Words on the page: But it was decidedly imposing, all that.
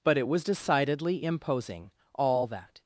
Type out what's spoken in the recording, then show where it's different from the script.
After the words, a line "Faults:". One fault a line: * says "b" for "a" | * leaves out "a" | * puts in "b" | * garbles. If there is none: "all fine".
But it was decidedly imposing, all that.
Faults:
all fine